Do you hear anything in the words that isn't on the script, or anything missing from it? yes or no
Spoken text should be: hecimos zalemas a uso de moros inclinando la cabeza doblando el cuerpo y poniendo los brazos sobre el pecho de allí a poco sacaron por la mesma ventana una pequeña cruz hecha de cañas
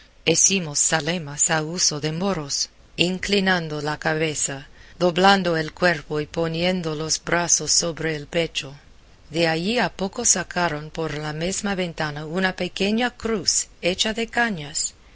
no